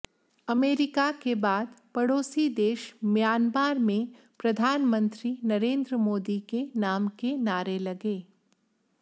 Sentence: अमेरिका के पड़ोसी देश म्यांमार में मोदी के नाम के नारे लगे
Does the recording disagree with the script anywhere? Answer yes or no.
yes